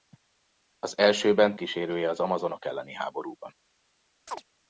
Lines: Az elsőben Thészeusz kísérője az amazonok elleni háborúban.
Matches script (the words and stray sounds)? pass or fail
fail